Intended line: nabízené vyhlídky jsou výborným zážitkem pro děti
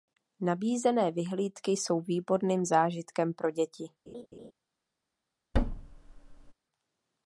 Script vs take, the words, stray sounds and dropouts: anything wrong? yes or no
yes